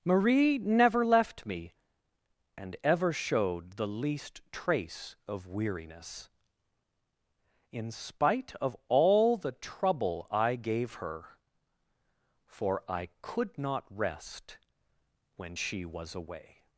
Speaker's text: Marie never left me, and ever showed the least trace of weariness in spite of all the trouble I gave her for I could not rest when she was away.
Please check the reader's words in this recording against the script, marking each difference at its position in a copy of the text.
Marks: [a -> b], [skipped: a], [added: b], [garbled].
Marie never left me, and ever showed the least trace of weariness in spite of all the trouble I gave her for I could not rest when she was away.